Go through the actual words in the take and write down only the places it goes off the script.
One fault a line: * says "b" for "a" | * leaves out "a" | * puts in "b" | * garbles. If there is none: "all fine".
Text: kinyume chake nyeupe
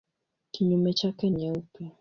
all fine